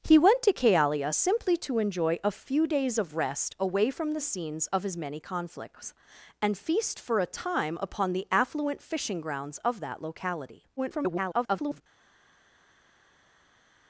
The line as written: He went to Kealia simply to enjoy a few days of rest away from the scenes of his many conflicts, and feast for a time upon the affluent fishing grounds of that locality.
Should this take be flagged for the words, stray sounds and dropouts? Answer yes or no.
yes